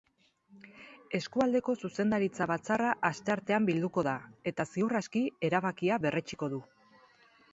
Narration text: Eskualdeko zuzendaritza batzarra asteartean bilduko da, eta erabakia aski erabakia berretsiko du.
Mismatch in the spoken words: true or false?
true